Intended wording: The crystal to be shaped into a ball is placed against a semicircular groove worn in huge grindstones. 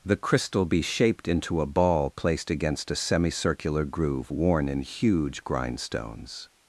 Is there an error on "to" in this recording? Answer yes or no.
yes